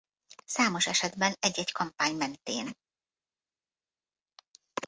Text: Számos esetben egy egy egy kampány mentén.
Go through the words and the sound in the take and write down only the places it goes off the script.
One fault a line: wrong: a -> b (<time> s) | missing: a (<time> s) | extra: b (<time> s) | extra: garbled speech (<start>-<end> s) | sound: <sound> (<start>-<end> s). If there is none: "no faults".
missing: egy (1.7 s)